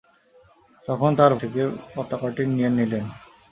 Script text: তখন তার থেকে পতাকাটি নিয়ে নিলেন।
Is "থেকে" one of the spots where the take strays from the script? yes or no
no